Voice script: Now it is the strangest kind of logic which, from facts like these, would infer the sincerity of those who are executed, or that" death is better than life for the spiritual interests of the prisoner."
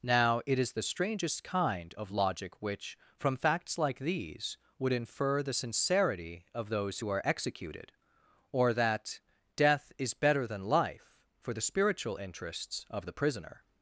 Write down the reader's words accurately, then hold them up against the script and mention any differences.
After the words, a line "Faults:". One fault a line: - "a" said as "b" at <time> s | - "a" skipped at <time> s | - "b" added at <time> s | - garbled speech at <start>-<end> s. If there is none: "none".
Now it is the strangest kind of logic which, from facts like these, would infer the sincerity of those who are executed, or that" death is better than life for the spiritual interests of the prisoner."
Faults:
none